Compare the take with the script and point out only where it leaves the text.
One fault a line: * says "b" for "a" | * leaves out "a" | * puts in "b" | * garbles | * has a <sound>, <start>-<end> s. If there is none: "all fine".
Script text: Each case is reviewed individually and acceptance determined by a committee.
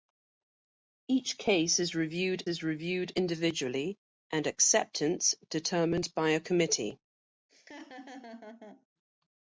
* puts in "is reviewed"
* has a laugh, 7.5-8.9 s